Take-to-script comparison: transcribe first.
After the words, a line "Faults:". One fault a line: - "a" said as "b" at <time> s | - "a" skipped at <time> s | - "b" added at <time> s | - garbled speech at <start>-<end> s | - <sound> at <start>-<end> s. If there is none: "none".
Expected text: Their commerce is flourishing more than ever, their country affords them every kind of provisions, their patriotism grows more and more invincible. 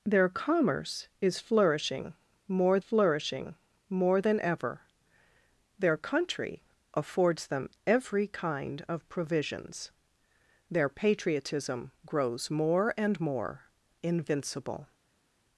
Their commerce is flourishing more flourishing more than ever, their country affords them every kind of provisions, their patriotism grows more and more invincible.
Faults:
- "flourishing more" added at 2.8 s